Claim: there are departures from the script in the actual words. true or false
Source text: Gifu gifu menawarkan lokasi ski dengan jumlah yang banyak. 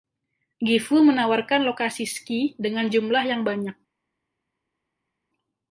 true